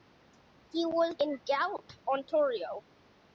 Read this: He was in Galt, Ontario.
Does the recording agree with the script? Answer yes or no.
yes